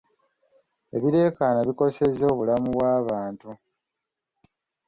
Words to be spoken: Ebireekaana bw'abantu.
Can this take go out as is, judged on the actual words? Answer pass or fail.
fail